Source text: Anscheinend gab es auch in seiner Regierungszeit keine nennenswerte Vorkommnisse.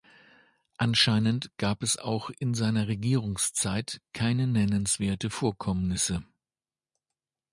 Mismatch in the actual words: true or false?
false